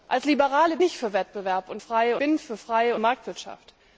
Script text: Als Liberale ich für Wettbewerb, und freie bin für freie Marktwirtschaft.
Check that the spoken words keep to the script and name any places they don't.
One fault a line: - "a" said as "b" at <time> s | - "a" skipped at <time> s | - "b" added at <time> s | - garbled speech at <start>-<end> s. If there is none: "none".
none